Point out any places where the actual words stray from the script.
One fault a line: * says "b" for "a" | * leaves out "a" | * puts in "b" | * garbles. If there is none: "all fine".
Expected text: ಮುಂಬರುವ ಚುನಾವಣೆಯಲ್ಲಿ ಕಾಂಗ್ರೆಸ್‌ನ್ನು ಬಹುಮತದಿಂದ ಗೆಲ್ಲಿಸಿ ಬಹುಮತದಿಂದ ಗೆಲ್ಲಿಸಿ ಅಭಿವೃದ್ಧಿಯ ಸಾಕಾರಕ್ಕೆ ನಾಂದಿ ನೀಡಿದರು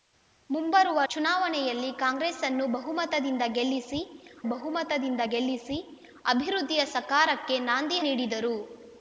all fine